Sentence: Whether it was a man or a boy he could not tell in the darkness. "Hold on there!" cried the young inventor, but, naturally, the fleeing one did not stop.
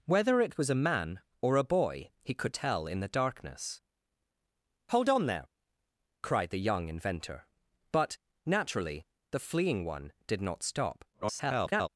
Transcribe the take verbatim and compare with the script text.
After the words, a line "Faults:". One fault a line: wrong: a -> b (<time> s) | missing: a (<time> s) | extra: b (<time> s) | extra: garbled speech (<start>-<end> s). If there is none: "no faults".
Whether it was a man or a boy he could tell in the darkness. "Hold on there!" cried the young inventor, but, naturally, the fleeing one did not stop. [garbled]
Faults:
missing: not (2.5 s)
extra: garbled speech (11.1-11.9 s)